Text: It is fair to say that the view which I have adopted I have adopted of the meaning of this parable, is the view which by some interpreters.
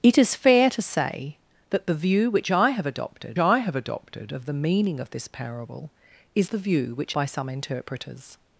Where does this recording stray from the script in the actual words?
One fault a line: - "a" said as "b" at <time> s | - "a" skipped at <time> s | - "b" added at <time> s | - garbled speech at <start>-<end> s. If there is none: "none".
none